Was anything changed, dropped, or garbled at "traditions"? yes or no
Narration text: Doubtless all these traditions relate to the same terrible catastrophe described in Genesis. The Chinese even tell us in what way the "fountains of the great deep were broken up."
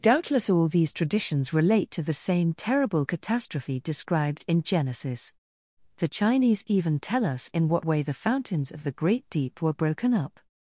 no